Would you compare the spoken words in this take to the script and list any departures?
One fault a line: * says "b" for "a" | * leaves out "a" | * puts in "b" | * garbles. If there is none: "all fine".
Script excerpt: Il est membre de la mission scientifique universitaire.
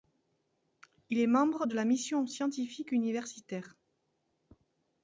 all fine